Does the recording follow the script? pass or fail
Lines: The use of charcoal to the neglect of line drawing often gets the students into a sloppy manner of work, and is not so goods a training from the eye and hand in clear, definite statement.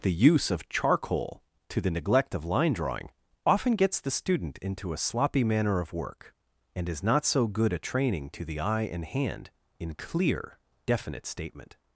fail